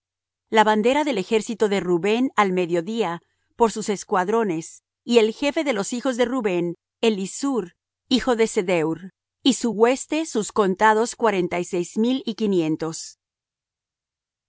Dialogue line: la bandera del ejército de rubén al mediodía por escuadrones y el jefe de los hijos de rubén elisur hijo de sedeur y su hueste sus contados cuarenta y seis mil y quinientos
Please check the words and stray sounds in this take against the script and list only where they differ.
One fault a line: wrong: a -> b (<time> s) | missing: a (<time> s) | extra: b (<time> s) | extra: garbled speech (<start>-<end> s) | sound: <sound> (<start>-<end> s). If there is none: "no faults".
extra: sus (3.7 s)